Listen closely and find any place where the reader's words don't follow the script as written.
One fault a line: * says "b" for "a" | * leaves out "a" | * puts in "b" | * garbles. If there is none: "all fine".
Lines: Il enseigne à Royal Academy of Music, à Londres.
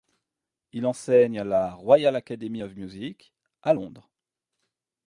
* puts in "la"